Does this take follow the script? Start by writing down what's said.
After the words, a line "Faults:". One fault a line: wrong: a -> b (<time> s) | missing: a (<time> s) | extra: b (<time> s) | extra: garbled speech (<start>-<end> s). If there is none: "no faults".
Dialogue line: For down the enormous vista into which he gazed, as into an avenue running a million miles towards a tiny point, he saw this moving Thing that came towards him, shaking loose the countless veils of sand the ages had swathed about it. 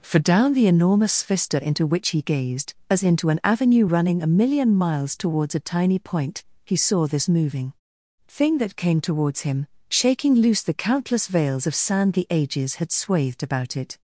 For down the enormous vista into which he gazed, as into an avenue running a million miles towards a tiny point, he saw this moving Thing that came towards him, shaking loose the countless veils of sand the ages had swathed about it.
Faults:
no faults